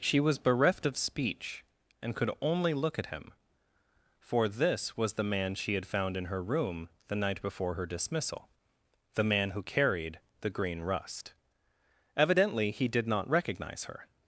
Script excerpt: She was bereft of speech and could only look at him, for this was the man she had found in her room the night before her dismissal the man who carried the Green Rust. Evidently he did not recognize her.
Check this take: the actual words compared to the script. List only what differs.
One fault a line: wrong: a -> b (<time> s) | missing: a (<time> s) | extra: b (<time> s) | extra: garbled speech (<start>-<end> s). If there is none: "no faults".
no faults